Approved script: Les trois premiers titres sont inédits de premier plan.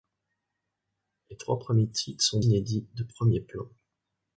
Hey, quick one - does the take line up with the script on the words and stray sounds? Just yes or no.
yes